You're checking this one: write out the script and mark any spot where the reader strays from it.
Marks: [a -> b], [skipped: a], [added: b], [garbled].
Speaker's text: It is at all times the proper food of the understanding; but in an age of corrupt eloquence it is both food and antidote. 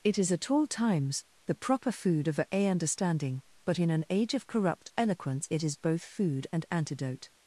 It is at all times the proper food of [the -> a] understanding; but in an age of corrupt eloquence it is both food and antidote.